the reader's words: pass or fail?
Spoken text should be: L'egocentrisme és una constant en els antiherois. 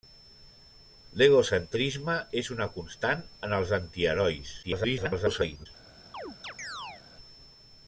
fail